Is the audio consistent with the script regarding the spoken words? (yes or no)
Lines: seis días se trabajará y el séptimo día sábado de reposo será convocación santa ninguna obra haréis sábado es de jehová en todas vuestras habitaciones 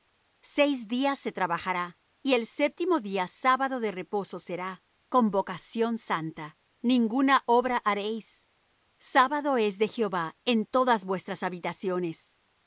yes